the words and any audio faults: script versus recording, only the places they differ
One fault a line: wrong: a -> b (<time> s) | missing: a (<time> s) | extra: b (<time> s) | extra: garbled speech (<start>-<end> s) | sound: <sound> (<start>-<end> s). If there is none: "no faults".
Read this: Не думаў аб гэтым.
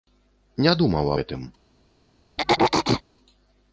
missing: аб (1.1 s)
sound: throat clearing (2.4-3.0 s)